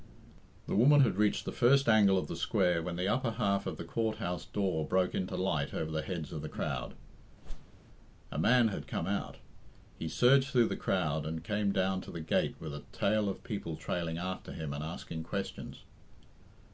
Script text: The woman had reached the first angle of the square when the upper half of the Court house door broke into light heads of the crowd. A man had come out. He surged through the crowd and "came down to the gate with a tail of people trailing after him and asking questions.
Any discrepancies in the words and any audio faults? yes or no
yes